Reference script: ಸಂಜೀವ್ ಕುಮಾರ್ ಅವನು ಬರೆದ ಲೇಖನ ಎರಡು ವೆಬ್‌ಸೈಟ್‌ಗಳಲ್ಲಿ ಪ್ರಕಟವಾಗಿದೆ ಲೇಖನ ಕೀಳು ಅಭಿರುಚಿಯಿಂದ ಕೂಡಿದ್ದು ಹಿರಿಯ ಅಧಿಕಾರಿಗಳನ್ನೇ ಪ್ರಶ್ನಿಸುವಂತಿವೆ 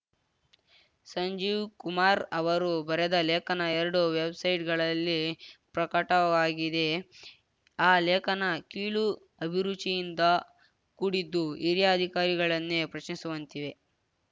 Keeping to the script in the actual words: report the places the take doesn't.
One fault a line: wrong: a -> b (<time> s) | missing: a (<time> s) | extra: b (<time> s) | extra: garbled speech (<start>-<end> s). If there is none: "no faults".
wrong: ಅವನು -> ಅವರು (2.3 s)
extra: ಆ (7.8 s)